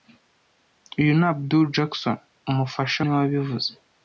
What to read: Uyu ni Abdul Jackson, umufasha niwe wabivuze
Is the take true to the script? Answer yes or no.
yes